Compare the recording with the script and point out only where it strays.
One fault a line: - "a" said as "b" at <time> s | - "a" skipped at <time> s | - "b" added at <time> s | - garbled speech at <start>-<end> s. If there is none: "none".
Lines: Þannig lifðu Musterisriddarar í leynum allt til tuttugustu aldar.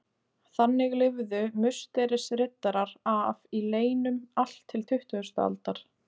- "af" added at 3.1 s